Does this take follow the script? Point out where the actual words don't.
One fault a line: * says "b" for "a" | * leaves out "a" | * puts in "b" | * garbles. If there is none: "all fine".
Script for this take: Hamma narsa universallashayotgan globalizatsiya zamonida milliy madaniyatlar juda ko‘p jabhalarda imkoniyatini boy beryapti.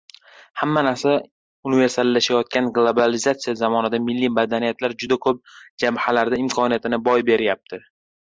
all fine